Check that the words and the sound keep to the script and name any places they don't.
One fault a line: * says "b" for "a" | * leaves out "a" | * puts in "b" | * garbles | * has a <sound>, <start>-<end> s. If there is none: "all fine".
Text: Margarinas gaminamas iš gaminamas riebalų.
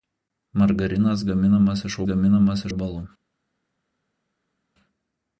all fine